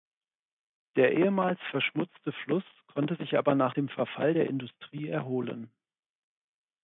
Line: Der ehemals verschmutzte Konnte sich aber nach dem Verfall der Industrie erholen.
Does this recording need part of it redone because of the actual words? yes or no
yes